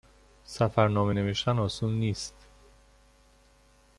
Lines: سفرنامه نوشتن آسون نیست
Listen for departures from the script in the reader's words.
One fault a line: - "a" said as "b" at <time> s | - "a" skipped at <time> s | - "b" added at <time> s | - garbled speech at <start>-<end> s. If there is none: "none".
none